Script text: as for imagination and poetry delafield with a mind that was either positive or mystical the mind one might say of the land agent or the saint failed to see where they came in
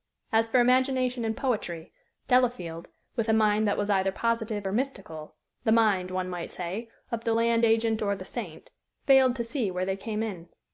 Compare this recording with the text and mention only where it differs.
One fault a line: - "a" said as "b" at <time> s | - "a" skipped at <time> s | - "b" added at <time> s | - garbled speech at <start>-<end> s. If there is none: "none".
none